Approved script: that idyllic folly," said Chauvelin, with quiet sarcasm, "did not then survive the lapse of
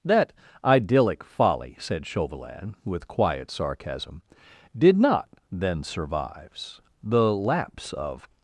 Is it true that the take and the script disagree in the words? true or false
true